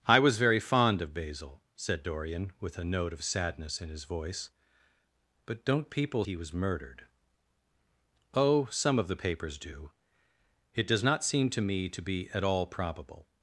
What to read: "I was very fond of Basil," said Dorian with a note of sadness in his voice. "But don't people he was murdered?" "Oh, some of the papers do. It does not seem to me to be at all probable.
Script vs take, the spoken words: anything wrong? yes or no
no